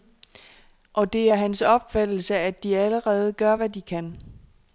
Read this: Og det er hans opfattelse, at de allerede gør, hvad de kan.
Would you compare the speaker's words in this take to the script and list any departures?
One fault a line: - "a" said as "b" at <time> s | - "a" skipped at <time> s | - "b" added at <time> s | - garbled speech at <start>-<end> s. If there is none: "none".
none